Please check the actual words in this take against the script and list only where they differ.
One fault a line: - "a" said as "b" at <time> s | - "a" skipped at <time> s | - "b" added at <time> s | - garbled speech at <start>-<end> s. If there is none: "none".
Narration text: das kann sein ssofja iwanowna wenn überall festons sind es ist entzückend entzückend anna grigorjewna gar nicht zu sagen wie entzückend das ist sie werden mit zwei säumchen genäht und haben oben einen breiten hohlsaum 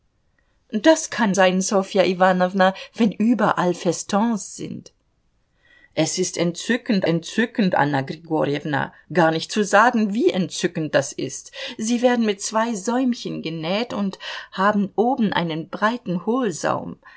none